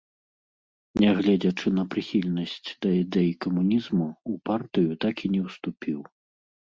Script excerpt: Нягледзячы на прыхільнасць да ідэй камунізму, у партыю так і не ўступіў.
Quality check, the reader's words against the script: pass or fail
pass